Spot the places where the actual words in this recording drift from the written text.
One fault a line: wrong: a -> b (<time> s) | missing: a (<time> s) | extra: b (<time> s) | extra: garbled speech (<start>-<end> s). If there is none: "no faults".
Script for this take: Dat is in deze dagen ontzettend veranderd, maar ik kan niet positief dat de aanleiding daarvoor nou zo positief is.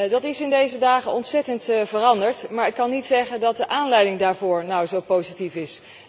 wrong: positief -> zeggen (3.1 s)